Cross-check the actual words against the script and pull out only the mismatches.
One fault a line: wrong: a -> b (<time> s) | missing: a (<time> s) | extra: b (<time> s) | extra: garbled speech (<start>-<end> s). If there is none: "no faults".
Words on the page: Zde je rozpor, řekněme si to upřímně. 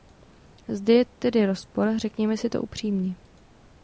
extra: tedy (1.1 s)